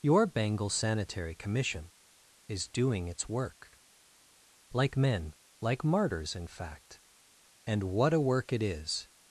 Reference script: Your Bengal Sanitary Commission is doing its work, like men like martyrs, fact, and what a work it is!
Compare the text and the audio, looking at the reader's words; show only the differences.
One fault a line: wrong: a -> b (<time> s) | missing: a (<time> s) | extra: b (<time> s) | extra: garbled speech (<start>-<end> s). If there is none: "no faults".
extra: in (6.3 s)